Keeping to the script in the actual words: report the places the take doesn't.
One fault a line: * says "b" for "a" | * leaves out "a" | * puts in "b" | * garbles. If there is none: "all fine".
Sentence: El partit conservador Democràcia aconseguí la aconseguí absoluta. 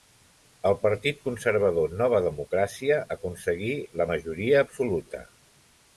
* puts in "Nova"
* says "majoria" for "aconseguí"